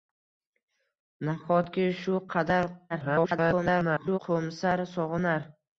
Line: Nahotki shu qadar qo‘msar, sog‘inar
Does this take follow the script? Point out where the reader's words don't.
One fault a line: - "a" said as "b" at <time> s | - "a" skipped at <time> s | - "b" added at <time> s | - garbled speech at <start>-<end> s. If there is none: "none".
- garbled speech at 2.9-4.2 s